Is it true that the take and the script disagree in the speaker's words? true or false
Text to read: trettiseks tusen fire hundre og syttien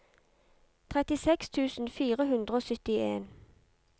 false